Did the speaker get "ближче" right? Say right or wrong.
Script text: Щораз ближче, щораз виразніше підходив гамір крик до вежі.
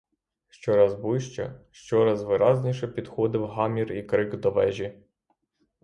right